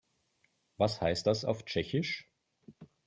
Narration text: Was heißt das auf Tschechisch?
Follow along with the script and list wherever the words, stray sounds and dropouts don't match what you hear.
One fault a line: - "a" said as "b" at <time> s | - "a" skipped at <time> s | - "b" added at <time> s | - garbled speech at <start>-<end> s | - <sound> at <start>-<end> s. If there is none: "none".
none